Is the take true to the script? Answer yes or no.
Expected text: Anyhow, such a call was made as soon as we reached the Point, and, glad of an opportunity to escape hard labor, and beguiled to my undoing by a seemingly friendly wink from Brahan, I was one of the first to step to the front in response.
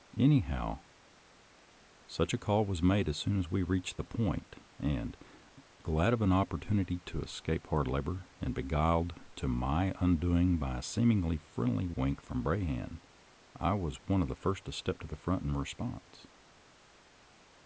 yes